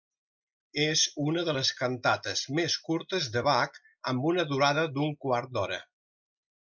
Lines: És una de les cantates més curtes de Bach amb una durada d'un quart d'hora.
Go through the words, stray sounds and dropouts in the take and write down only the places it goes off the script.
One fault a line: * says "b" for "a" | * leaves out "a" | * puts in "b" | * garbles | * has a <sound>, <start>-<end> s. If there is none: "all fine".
all fine